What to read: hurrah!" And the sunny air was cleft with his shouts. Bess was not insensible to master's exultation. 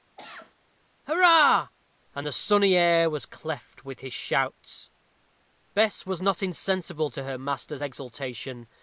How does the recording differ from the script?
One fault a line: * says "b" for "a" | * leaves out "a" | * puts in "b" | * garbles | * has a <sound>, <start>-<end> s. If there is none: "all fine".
* has a cough, 0.2-0.6 s
* puts in "her"